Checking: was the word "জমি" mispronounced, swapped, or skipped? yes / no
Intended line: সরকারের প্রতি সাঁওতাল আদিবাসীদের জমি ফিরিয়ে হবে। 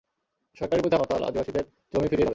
no